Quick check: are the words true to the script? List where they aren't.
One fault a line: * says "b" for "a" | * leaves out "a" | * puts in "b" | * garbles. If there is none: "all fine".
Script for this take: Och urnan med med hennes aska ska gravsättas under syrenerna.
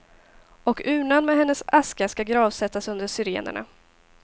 * leaves out "med"